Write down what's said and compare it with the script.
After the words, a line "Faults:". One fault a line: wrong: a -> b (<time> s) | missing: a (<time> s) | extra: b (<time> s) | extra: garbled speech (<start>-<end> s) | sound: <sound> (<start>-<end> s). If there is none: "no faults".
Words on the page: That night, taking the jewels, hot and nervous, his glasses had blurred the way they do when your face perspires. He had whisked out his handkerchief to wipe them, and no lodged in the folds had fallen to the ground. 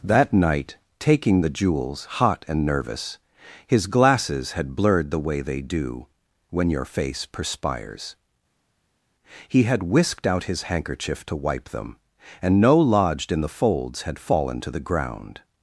That night, taking the jewels, hot and nervous, his glasses had blurred the way they do when your face perspires. He had whisked out his handkerchief to wipe them, and no lodged in the folds had fallen to the ground.
Faults:
no faults